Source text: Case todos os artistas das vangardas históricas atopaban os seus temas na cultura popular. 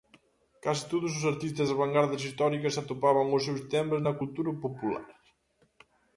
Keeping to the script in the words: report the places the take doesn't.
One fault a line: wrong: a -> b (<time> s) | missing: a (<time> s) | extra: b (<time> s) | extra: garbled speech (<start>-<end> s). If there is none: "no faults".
no faults